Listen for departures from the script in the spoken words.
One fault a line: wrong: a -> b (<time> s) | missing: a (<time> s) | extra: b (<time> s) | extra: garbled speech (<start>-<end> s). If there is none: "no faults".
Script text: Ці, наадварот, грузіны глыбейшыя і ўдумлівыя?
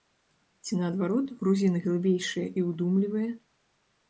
no faults